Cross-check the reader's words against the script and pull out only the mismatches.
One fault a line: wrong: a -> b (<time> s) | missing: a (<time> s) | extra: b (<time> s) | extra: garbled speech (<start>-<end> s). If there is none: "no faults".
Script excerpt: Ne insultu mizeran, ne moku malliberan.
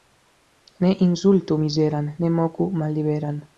no faults